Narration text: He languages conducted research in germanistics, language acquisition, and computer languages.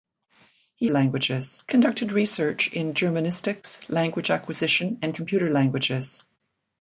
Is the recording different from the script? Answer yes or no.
no